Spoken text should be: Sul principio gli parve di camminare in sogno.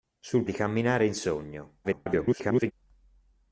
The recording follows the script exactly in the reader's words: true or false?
false